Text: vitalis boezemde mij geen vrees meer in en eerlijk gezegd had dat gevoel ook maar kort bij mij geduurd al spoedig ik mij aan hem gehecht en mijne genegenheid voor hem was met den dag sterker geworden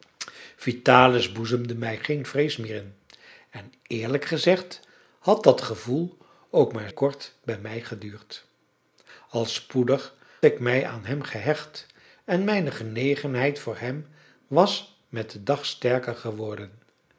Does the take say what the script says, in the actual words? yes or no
yes